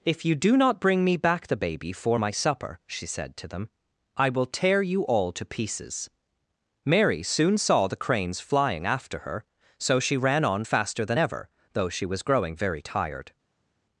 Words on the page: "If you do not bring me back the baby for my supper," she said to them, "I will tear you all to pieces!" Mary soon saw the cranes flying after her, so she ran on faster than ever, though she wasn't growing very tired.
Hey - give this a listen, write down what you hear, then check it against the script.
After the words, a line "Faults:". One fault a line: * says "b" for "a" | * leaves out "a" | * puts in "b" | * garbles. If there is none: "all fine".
"If you do not bring me back the baby for my supper," she said to them, "I will tear you all to pieces!" Mary soon saw the cranes flying after her, so she ran on faster than ever, though she was growing very tired.
Faults:
* says "was" for "wasn't"